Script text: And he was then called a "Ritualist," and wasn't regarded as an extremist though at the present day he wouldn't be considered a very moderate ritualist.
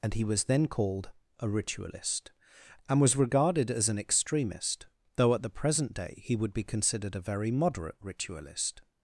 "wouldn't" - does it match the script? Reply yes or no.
no